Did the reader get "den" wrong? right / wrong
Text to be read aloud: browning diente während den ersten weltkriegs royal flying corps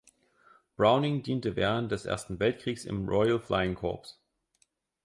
wrong